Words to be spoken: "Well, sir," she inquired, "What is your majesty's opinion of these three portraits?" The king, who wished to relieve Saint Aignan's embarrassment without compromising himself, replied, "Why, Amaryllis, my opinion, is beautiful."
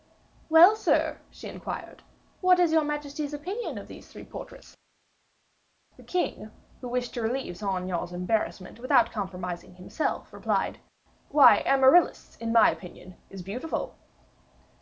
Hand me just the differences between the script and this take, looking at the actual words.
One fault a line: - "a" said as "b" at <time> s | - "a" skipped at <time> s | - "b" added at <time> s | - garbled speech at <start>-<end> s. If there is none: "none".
- "in" added at 12.4 s